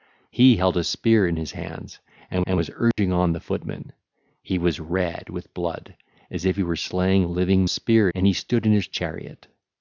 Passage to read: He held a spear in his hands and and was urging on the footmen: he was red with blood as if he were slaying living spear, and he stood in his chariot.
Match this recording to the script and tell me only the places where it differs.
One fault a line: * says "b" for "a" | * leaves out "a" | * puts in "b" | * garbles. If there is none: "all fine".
all fine